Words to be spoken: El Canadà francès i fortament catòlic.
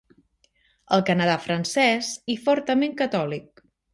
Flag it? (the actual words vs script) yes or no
no